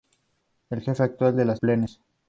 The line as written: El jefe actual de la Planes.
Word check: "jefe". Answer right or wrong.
right